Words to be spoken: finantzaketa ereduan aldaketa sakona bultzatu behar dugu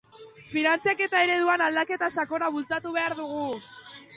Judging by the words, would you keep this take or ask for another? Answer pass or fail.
pass